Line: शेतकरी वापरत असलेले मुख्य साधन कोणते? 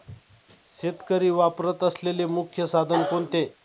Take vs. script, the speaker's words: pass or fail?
pass